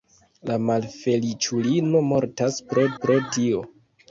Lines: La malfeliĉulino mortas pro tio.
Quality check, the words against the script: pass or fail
fail